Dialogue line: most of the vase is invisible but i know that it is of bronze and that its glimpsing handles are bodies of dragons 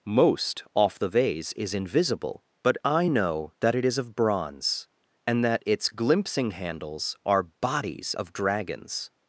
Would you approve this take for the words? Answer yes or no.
no